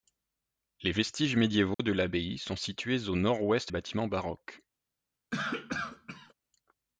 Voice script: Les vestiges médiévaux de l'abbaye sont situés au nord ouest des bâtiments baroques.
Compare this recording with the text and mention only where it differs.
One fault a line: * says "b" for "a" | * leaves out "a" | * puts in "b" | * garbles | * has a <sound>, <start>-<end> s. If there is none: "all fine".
* has a dropout, 1.7-1.8 s
* leaves out "des"
* has a cough, 5.3-6.3 s